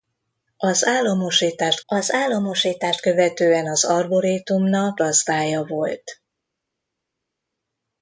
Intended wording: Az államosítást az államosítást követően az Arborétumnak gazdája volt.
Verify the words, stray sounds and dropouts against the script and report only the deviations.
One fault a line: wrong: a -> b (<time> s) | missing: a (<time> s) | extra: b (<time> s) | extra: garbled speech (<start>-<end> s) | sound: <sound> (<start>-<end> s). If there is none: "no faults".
no faults